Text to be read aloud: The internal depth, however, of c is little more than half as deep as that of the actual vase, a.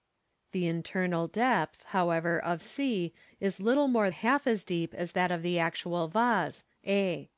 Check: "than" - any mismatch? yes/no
yes